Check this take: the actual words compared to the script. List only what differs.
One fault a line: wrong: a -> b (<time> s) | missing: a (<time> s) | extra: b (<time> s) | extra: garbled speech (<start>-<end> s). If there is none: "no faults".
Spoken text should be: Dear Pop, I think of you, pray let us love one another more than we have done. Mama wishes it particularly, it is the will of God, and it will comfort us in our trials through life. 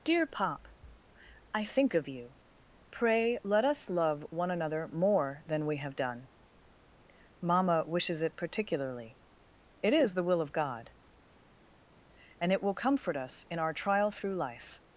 wrong: trials -> trial (13.7 s)